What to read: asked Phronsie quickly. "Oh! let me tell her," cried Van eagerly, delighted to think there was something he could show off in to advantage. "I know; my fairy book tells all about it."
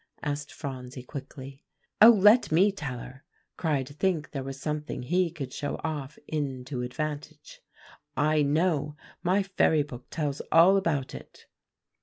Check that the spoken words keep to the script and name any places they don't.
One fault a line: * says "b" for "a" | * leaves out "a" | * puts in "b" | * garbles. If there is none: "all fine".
* leaves out "Van eagerly delighted"